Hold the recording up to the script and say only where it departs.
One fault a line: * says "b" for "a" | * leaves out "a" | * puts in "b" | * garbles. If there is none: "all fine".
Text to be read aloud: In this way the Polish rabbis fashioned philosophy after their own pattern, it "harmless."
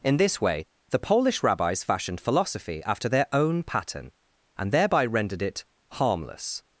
* puts in "and thereby rendered"